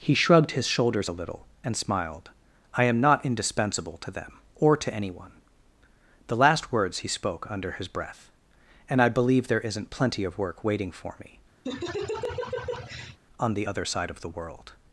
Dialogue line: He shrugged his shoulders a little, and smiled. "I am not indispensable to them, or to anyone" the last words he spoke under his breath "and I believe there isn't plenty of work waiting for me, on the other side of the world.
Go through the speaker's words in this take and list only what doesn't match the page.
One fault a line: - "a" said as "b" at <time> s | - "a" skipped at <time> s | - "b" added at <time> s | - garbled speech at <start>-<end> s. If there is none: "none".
none